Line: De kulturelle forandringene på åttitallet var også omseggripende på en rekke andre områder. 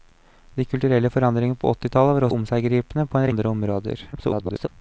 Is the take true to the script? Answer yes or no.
no